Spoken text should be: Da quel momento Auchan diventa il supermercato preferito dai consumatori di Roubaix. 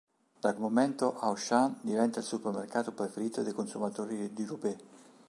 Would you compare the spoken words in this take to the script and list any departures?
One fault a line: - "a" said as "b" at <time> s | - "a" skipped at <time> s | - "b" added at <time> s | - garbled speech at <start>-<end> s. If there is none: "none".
- "quel" skipped at 0.6 s